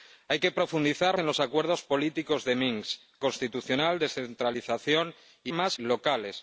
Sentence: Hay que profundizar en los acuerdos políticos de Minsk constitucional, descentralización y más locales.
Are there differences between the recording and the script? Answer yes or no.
no